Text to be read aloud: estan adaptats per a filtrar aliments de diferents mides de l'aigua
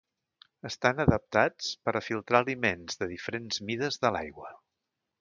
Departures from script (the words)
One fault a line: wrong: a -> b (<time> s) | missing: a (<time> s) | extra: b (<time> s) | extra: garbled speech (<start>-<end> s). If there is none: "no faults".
no faults